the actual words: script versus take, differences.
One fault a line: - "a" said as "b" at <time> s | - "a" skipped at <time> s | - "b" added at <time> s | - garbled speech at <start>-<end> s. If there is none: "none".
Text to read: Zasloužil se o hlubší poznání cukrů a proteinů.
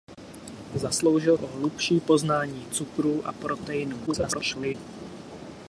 - "se" skipped at 1.4 s
- garbled speech at 4.1-4.7 s